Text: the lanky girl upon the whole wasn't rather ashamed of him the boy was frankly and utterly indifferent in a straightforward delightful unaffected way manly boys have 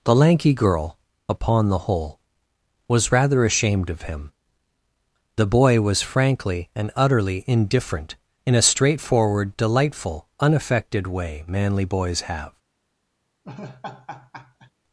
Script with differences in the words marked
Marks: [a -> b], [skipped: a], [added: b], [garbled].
the lanky girl upon the whole [wasn't -> was] rather ashamed of him the boy was frankly and utterly indifferent in a straightforward delightful unaffected way manly boys have